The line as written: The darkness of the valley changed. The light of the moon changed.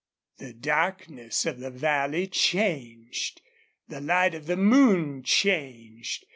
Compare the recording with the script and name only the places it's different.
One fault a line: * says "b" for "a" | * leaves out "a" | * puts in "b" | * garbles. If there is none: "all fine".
all fine